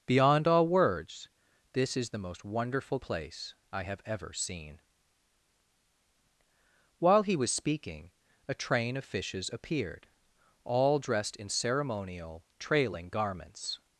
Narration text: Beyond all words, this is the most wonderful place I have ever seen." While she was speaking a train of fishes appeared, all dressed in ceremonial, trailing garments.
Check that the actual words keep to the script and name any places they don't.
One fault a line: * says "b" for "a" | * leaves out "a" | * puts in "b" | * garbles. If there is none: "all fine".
* says "he" for "she"